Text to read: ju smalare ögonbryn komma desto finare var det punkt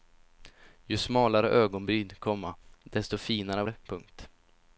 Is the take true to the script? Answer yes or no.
no